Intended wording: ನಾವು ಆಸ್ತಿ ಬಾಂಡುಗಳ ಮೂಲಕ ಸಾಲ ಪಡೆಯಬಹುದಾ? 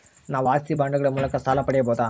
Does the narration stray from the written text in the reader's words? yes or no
no